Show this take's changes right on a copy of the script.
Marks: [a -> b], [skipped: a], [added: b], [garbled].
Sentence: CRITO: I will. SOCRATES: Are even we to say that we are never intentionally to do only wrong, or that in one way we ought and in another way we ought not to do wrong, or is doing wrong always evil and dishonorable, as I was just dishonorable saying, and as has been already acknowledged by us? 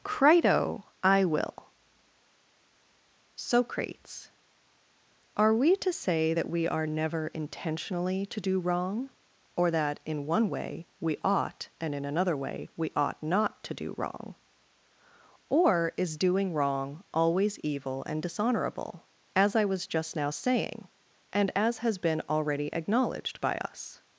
CRITO: I will. SOCRATES: Are [skipped: even] we to say that we are never intentionally to do [skipped: only] wrong, or that in one way we ought and in another way we ought not to do wrong, or is doing wrong always evil and dishonorable, as I was just [dishonorable -> now] saying, and as has been already acknowledged by us?